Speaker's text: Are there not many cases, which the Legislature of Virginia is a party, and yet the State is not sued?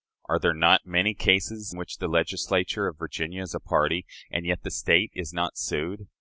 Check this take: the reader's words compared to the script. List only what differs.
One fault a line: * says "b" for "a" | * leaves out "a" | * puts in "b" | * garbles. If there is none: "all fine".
all fine